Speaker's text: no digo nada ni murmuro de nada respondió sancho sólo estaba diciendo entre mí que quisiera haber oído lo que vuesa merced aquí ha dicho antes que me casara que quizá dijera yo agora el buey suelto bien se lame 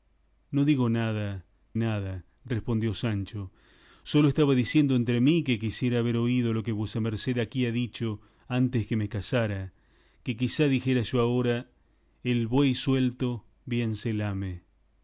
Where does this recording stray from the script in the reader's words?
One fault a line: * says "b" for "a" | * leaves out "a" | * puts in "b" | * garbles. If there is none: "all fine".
* leaves out "ni murmuro de"